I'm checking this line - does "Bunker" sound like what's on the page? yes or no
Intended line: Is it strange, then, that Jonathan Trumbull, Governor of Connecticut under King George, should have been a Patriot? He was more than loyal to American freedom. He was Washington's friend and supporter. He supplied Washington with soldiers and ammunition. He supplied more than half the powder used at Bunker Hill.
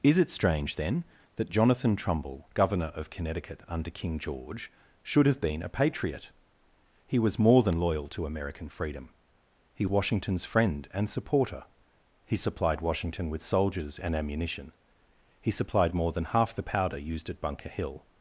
yes